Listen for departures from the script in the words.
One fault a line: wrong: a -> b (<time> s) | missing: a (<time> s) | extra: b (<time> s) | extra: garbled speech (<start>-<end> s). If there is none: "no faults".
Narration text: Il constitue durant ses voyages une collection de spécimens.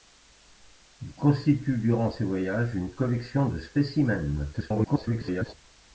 extra: garbled speech (4.5-5.5 s)